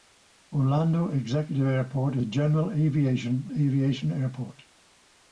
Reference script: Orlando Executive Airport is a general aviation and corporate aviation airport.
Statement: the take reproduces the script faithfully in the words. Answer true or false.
false